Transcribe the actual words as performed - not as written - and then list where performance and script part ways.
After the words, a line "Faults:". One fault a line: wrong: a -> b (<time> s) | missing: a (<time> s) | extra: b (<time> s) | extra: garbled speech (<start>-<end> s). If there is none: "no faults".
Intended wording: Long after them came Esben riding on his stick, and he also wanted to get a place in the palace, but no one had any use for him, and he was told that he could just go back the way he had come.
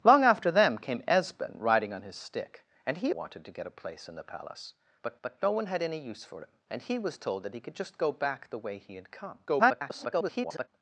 Long after them came Esben riding on his stick, and he wanted to get a place in the palace, but but no one had any use for him, and he was told that he could just go back the way he had come. [garbled]
Faults:
missing: also (3.1 s)
extra: but (5.2 s)
extra: garbled speech (9.5-10.7 s)